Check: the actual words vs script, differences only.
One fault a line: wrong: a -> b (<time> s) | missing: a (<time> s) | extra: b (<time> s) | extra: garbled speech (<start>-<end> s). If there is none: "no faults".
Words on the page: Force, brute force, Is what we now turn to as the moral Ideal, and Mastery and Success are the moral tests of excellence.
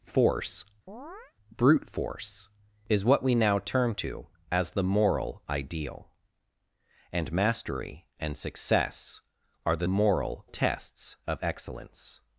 no faults